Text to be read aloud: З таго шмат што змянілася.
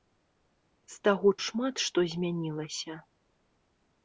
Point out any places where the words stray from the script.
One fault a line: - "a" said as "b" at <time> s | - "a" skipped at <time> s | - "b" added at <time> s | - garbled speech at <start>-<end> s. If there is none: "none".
none